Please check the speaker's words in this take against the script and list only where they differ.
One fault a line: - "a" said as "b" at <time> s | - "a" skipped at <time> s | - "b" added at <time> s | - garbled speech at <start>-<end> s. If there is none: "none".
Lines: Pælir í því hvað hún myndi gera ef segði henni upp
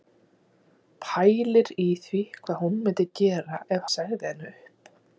none